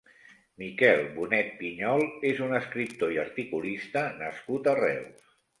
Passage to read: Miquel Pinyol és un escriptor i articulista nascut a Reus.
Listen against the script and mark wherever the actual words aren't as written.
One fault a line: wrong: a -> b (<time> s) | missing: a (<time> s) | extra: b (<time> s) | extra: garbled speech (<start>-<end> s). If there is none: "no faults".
extra: Bonet (1.2 s)